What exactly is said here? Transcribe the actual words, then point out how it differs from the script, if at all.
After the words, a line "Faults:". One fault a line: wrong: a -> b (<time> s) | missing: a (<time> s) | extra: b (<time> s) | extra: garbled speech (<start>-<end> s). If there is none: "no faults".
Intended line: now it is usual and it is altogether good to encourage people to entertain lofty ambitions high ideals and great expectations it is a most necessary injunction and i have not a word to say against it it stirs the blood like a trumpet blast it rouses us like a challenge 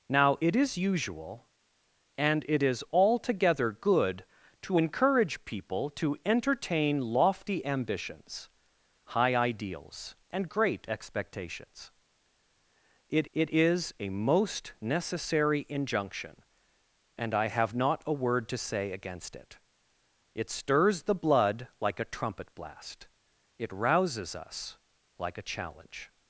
now it is usual and it is altogether good to encourage people to entertain lofty ambitions high ideals and great expectations it it is a most necessary injunction and i have not a word to say against it it stirs the blood like a trumpet blast it rouses us like a challenge
Faults:
extra: it (13.3 s)